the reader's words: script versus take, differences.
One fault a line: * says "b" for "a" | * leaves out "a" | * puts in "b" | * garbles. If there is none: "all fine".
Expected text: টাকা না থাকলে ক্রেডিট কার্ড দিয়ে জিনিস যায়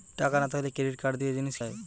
all fine